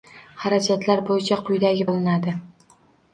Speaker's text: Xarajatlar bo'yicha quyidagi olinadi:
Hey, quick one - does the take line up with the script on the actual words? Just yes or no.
yes